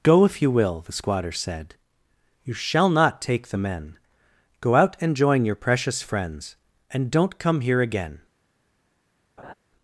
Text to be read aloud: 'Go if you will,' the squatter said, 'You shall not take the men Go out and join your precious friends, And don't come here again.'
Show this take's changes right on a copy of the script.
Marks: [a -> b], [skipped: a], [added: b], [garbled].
'Go if you will,' the squatter said, 'You shall not take the men Go out and join your precious friends, And don't come here again.'